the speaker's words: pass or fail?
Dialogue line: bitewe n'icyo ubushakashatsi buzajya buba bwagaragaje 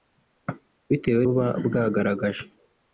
fail